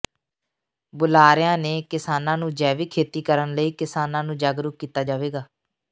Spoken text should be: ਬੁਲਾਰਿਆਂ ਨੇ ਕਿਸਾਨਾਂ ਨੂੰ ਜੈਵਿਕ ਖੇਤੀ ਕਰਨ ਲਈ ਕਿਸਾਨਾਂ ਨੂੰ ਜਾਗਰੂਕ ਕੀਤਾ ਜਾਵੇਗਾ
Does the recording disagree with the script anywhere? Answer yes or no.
no